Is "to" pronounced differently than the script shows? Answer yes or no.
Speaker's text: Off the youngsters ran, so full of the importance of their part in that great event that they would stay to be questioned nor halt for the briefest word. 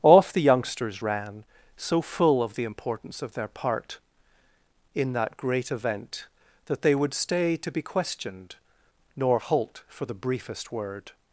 no